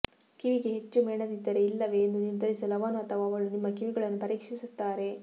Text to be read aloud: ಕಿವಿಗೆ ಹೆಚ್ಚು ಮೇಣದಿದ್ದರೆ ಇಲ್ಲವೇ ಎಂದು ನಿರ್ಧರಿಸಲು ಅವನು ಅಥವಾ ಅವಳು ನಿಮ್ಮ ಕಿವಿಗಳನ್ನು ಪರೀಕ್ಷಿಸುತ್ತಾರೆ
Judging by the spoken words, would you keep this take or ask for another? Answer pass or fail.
pass